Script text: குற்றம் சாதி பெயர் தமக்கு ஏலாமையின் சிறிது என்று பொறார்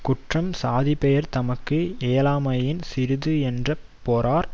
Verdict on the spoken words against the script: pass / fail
pass